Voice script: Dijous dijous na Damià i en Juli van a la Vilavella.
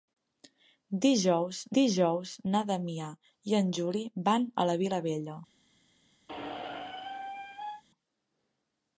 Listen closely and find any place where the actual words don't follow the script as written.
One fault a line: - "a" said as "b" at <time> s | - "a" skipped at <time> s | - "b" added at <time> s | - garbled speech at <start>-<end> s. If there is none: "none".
none